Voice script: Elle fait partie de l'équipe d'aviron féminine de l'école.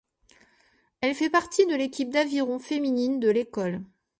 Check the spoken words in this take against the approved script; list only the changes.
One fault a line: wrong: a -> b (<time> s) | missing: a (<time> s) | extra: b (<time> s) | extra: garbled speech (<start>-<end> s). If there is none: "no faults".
no faults